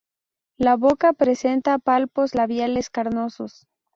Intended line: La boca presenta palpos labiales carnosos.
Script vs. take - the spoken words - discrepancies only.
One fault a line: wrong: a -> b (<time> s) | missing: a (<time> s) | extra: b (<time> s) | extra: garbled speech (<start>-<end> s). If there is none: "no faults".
no faults